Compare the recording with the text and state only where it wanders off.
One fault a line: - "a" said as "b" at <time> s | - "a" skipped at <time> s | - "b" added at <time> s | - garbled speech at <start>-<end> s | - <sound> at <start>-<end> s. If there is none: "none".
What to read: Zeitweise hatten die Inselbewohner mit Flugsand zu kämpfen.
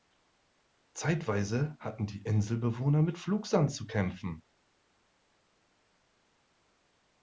none